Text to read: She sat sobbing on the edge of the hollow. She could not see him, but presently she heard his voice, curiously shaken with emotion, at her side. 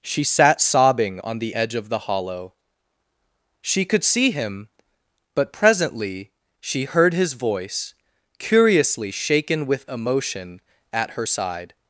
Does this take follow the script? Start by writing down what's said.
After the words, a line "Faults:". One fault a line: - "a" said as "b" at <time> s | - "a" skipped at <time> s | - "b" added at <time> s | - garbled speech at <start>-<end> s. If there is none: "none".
She sat sobbing on the edge of the hollow. She could see him, but presently she heard his voice, curiously shaken with emotion, at her side.
Faults:
- "not" skipped at 4.0 s